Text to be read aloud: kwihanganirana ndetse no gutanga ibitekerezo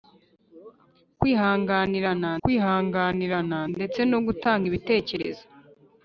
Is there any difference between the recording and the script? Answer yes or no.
yes